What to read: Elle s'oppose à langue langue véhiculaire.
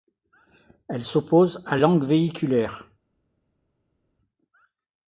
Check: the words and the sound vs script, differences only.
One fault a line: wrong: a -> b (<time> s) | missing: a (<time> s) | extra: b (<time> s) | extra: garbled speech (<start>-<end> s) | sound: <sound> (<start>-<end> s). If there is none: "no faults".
missing: langue (2.0 s)